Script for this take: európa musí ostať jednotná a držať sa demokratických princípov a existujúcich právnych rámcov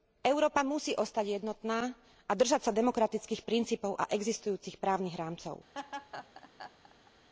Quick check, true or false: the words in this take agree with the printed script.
true